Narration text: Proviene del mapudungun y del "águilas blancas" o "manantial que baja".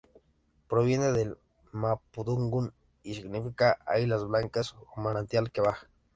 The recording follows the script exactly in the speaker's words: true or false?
false